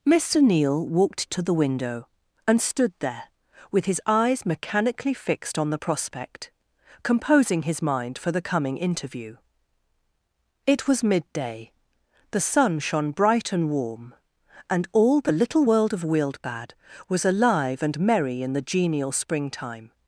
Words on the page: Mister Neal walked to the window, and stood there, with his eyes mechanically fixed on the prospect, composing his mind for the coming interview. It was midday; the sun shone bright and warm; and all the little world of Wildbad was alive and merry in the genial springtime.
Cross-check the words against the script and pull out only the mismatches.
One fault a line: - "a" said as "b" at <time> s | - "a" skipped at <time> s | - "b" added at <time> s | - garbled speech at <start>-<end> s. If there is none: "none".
none